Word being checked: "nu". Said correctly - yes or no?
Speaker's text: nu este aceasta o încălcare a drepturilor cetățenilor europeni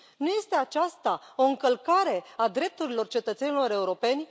yes